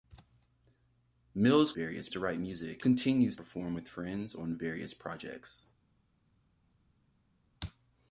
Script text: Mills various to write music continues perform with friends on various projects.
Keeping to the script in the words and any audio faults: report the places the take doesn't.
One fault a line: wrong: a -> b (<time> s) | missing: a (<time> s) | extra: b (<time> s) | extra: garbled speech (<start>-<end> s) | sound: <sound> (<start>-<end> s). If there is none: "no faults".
no faults